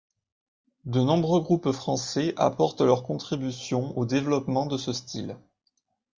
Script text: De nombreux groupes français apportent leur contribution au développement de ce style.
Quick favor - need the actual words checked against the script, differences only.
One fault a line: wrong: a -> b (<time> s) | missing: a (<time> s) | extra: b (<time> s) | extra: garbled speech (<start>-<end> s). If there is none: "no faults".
no faults